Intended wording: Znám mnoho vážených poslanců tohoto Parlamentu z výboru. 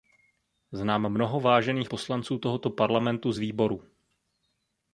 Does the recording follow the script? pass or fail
pass